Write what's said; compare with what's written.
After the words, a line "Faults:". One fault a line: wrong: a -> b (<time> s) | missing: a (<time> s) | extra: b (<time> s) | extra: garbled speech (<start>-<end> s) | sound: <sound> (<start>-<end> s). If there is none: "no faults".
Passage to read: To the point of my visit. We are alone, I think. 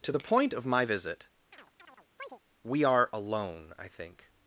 To the point of my visit. We are alone, I think.
Faults:
sound: chirp (1.5-2.4 s)